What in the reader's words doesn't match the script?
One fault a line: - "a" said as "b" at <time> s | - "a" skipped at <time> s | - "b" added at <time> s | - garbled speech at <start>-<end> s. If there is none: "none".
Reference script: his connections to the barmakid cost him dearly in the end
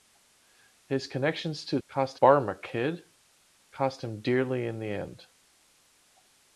- "the" said as "cost" at 1.9 s